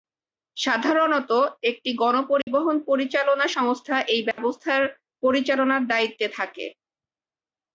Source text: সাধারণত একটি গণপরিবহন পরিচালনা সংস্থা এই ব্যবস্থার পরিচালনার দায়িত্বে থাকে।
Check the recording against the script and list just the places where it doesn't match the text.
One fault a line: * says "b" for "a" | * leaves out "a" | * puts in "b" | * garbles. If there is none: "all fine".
all fine